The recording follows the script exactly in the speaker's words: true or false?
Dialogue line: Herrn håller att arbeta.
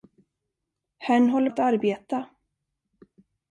true